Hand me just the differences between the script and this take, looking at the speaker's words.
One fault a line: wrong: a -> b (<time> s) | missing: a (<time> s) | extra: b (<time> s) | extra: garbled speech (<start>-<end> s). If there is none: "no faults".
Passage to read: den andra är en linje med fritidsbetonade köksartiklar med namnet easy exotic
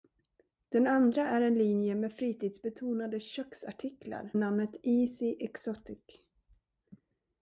missing: med (4.3 s)